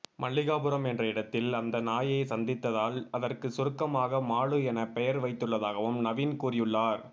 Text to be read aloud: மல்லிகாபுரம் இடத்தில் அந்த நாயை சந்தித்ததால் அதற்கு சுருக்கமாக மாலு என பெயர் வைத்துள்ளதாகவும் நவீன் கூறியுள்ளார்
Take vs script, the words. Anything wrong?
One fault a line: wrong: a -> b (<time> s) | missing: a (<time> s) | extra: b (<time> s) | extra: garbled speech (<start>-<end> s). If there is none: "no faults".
extra: என்ற (0.8 s)